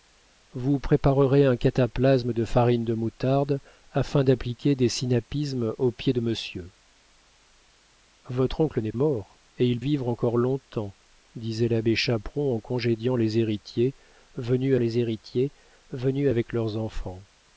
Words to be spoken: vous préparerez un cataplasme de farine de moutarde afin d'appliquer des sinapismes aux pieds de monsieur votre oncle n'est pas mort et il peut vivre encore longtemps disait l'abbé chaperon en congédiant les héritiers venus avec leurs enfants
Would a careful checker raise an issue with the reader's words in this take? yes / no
yes